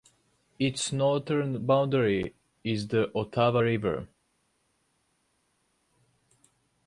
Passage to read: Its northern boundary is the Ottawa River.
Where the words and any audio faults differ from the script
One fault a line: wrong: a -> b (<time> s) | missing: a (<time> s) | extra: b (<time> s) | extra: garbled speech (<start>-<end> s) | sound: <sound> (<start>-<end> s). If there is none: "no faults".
no faults